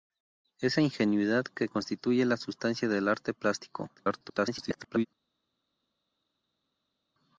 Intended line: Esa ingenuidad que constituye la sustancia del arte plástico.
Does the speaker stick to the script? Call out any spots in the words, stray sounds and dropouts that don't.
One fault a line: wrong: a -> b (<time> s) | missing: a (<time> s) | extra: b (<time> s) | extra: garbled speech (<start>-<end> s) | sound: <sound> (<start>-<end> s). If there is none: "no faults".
extra: garbled speech (4.0-5.1 s)